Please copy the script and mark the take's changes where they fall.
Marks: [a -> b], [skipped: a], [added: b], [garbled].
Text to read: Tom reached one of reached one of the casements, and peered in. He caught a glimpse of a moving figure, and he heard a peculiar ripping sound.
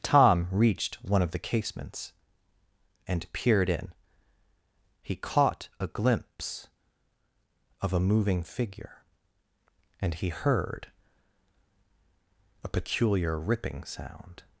Tom reached one of [skipped: reached one of] the casements, and peered in. He caught a glimpse of a moving figure, and he heard a peculiar ripping sound.